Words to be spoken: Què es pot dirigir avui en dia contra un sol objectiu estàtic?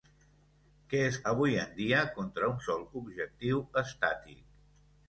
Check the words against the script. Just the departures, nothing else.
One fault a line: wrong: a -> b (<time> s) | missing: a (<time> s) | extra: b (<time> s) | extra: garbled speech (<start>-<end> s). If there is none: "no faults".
missing: pot dirigir (1.2 s)